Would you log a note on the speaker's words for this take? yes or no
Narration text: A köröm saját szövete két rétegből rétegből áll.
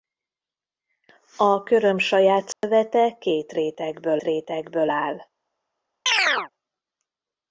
no